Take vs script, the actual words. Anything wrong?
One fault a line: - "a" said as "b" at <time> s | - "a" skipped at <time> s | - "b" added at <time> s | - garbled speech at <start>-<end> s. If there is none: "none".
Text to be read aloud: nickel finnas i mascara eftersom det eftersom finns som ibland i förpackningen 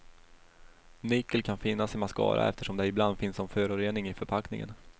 - "kan" added at 1.4 s
- "eftersom" said as "ibland" at 2.9 s
- "ibland" said as "förorening" at 3.5 s